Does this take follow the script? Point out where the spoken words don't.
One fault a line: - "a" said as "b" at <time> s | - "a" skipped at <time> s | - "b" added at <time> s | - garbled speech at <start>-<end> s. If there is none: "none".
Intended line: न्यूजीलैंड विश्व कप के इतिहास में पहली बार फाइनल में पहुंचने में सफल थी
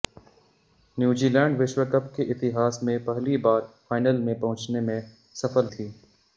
none